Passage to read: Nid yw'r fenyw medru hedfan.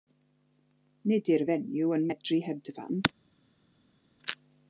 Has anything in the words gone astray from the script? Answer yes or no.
yes